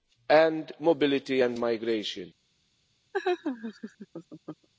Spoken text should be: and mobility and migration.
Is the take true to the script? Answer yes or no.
yes